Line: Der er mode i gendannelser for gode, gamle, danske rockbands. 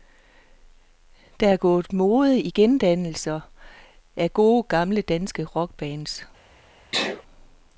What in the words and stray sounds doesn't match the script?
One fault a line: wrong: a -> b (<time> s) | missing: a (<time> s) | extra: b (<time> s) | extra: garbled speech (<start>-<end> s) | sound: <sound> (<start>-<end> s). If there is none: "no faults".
extra: gået (1.6 s)
wrong: for -> af (4.2 s)
sound: sneeze (6.9-7.2 s)